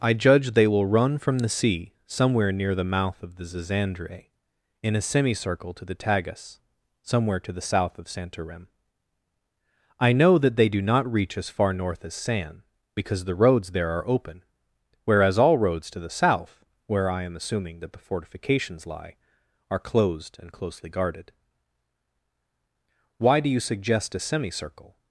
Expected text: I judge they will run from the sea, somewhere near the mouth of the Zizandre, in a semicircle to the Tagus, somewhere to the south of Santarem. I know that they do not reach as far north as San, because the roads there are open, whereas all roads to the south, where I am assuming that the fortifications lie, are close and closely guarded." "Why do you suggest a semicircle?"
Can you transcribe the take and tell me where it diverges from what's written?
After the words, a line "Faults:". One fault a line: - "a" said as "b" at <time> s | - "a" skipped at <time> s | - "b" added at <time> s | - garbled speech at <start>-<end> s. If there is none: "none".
I judge they will run from the sea, somewhere near the mouth of the Zizandre, in a semicircle to the Tagus, somewhere to the south of Santarem. I know that they do not reach as far north as San, because the roads there are open, whereas all roads to the south, where I am assuming that the fortifications lie, are closed and closely guarded." "Why do you suggest a semicircle?"
Faults:
- "close" said as "closed" at 19.8 s